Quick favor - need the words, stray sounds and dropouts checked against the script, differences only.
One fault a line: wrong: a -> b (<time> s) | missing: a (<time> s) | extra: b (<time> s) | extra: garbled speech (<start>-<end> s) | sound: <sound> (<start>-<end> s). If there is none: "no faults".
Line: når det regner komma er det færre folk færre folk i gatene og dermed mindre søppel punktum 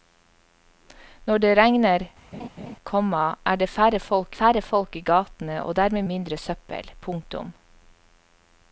sound: laugh (2.3-2.8 s)